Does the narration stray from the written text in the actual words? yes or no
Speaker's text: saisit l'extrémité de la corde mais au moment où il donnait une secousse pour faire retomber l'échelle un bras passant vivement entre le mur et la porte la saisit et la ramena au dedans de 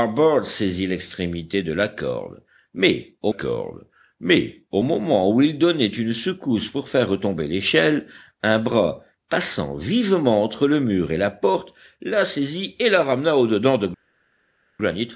yes